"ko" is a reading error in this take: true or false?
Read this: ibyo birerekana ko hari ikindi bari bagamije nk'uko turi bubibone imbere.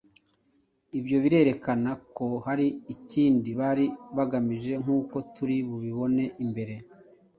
false